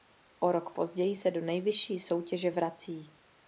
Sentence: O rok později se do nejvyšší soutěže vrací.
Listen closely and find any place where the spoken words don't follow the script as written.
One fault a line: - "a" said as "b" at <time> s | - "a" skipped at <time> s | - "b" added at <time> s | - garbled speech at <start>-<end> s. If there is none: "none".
none